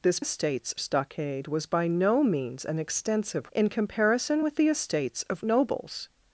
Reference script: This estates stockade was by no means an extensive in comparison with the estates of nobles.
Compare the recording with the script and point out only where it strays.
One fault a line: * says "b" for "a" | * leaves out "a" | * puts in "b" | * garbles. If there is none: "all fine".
all fine